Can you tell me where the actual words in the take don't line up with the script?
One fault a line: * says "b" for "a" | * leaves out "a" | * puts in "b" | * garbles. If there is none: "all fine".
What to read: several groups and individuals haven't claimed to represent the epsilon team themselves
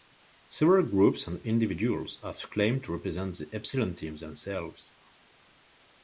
* says "have" for "haven't"